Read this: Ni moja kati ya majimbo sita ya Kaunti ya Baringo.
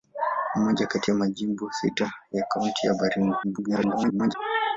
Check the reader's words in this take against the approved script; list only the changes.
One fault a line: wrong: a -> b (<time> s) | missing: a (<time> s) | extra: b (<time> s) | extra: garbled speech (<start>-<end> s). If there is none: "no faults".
extra: garbled speech (3.4-4.3 s)